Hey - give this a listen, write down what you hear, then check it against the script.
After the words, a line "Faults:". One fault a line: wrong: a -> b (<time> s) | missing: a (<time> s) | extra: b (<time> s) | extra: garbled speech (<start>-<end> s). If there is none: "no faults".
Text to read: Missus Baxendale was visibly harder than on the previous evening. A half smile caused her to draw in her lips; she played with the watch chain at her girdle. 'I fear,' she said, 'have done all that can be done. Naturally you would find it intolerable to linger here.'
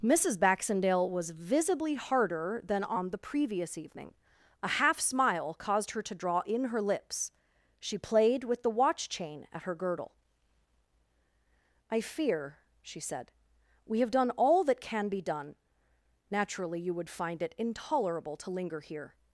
Missus Baxendale was visibly harder than on the previous evening. A half smile caused her to draw in her lips; she played with the watch chain at her girdle. 'I fear,' she said, 'we have done all that can be done. Naturally you would find it intolerable to linger here.'
Faults:
extra: we (13.8 s)